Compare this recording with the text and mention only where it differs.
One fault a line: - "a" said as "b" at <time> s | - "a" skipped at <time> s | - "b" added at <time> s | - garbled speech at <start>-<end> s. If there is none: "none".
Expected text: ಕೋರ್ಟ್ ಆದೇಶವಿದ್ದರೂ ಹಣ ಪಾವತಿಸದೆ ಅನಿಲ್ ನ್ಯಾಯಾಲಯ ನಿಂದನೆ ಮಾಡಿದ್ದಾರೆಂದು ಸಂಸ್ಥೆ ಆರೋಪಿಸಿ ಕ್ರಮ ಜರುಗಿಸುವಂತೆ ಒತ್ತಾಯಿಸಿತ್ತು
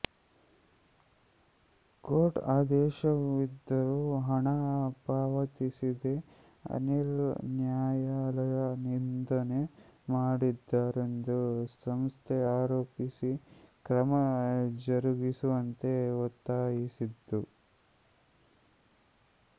none